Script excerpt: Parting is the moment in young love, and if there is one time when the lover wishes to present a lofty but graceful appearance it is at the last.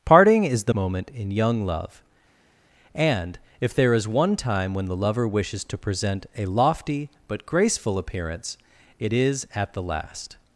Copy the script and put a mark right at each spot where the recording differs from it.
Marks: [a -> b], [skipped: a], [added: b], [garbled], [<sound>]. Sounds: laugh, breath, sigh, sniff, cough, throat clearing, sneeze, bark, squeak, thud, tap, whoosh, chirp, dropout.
Parting is the moment in young love, and if there is one time when the lover wishes to present a lofty but graceful appearance it is at the last.